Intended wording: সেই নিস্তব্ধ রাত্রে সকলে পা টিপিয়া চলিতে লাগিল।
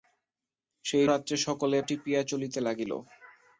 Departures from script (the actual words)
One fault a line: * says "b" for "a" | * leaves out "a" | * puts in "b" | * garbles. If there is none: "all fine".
* leaves out "নিস্তব্ধ"
* leaves out "পা"